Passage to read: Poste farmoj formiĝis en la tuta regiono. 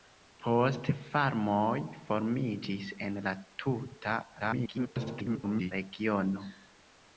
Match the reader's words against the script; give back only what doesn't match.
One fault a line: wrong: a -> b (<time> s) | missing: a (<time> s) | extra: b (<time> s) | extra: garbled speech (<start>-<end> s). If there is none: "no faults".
extra: garbled speech (4.4-5.7 s)